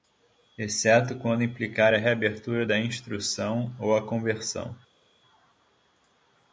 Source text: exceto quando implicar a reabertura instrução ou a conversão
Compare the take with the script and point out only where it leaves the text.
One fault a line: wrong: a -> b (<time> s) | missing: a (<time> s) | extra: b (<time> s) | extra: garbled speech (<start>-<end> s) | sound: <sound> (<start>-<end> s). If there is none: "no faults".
extra: da (2.6 s)